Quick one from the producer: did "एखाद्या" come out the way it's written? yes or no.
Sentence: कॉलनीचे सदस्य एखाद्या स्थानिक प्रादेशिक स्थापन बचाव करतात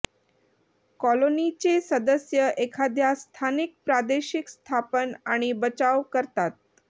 yes